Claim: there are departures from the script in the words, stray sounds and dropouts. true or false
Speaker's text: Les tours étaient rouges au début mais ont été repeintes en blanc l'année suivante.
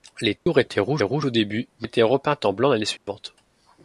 true